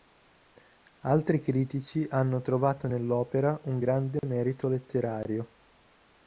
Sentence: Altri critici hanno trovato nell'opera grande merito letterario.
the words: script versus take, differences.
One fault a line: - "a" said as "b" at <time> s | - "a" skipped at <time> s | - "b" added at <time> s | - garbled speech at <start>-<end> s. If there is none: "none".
- "un" added at 3.6 s